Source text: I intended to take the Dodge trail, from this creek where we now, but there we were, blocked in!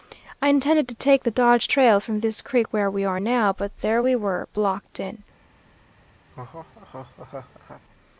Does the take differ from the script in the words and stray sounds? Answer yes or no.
yes